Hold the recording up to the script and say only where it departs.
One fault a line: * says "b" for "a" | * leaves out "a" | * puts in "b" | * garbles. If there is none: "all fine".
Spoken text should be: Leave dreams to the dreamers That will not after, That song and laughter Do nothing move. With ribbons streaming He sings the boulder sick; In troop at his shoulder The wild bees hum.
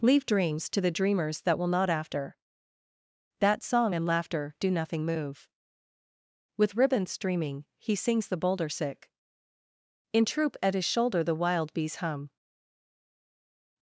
all fine